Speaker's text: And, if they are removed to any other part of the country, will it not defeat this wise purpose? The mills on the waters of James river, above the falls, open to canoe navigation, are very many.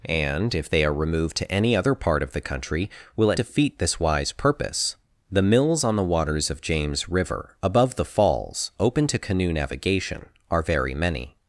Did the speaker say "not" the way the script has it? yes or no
no